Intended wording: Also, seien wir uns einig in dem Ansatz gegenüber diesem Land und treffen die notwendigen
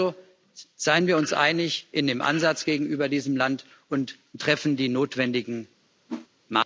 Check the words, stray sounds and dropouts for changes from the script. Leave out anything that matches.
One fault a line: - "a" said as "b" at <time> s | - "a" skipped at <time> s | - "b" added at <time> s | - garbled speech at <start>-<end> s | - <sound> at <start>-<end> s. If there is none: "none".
- whoosh at 6.1-6.3 s